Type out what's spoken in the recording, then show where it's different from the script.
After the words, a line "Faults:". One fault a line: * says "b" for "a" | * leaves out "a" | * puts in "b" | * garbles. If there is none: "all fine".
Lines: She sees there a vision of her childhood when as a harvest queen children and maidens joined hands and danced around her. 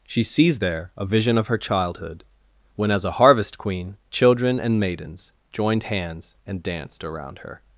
She sees there a vision of her childhood when as a harvest queen children and maidens joined hands and danced around her.
Faults:
all fine